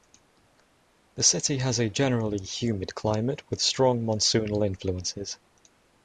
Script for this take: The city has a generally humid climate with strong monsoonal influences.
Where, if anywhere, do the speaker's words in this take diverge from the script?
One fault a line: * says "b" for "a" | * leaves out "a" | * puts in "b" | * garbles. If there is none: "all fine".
all fine